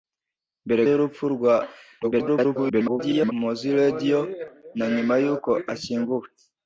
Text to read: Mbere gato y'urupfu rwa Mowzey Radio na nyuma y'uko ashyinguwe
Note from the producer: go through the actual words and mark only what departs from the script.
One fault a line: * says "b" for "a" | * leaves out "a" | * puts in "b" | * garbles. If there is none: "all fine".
* leaves out "gato"
* garbles